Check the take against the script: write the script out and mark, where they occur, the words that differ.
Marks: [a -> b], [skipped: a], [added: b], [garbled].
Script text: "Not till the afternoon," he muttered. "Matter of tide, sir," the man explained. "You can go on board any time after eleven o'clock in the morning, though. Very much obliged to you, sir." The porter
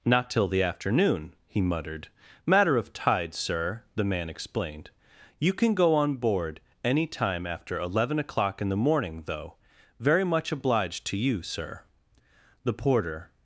"Not till the afternoon," he muttered. "Matter of tide, sir," the man explained. "You can go on board any time after eleven o'clock in the morning, though. Very much obliged to you, sir." The porter